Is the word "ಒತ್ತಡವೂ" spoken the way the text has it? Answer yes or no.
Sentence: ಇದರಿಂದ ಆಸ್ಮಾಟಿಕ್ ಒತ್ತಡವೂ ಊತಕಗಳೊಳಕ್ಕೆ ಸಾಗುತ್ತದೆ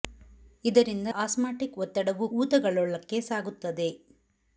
yes